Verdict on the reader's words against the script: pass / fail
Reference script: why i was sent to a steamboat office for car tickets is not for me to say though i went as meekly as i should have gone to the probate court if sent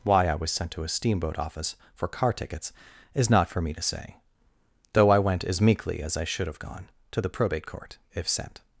pass